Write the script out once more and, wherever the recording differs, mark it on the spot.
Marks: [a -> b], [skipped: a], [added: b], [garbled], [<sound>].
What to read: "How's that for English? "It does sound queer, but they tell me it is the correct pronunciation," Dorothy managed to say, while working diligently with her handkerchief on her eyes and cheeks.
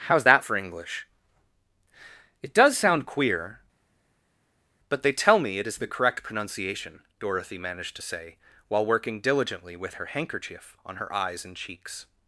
"How's that for English? "It does sound queer, but they tell me it is the correct pronunciation," Dorothy managed to say, while working diligently with her handkerchief on her eyes and cheeks.